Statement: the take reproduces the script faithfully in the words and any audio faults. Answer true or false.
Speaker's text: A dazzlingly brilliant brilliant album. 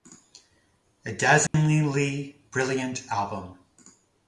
false